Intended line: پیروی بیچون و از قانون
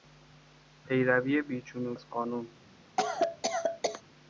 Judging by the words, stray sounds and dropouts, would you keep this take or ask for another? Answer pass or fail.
fail